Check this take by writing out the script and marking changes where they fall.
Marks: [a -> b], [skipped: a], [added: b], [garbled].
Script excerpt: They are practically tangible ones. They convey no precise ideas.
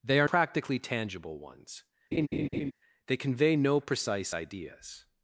They are practically tangible ones. They convey no precise ideas.